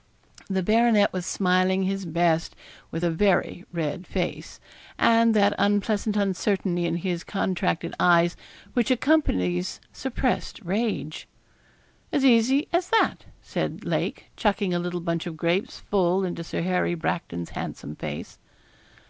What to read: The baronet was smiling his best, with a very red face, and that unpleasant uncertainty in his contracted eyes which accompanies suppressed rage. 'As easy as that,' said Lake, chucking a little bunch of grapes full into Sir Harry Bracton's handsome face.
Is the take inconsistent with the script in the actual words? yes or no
no